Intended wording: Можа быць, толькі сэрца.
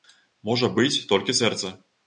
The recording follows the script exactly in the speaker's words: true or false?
true